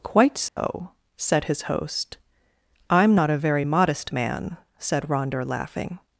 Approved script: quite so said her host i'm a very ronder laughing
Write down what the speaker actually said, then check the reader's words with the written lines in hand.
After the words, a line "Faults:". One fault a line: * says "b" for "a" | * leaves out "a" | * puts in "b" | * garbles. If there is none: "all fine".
quite so said his host i'm not a very modest man said ronder laughing
Faults:
* says "his" for "her"
* puts in "not"
* puts in "modest man said"